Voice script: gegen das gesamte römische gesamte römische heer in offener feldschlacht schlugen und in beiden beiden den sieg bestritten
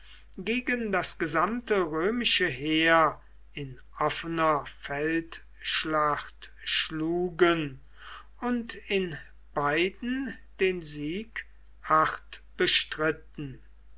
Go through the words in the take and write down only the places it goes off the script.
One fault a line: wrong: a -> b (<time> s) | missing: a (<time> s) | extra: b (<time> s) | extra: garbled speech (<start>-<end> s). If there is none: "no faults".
missing: gesamte römische (2.5 s)
missing: beiden (10.3 s)
extra: hart (11.8 s)